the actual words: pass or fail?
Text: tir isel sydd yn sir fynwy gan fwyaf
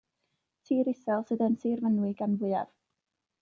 pass